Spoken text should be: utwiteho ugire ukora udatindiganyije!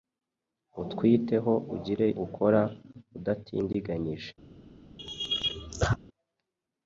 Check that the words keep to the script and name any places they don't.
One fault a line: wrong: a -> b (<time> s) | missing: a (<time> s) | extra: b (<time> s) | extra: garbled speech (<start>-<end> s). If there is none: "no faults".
no faults